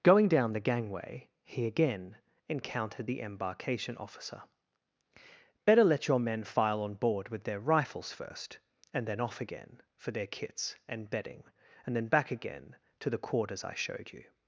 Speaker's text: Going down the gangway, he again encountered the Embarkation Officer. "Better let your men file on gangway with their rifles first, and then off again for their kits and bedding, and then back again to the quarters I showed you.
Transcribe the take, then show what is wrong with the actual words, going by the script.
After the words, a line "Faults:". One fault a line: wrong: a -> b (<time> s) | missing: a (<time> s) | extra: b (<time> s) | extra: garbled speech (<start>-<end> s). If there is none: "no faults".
Going down the gangway, he again encountered the Embarkation Officer. "Better let your men file on board with their rifles first, and then off again for their kits and bedding, and then back again to the quarters I showed you.
Faults:
wrong: gangway -> board (6.9 s)